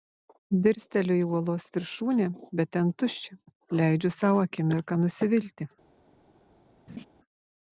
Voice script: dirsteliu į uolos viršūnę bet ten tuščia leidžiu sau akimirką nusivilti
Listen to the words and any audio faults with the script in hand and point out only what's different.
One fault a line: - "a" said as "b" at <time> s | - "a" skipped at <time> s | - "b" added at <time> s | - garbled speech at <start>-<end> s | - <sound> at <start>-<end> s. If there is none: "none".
- laugh at 6.9-7.1 s